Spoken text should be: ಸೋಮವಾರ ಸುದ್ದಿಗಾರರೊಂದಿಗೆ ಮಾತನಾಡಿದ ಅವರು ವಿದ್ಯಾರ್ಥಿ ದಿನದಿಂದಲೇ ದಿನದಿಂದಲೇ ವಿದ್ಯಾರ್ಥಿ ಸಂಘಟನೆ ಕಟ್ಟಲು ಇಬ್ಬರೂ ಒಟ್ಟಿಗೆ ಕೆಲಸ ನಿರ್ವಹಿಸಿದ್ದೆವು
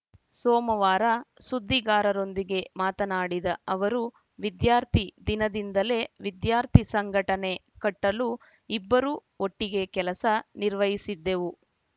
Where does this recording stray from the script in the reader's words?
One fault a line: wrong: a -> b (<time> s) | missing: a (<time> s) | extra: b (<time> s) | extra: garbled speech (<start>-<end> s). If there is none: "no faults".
missing: ದಿನದಿಂದಲೇ (6.0 s)